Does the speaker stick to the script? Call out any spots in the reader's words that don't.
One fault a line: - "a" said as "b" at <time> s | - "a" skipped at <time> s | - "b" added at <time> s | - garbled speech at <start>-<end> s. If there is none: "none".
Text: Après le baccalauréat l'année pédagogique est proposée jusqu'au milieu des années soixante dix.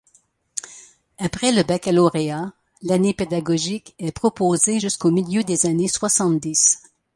none